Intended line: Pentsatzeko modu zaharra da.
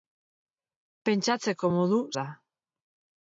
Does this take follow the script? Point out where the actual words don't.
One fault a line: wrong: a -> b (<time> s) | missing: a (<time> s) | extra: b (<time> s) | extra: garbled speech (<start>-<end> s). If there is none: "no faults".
missing: zaharra (2.0 s)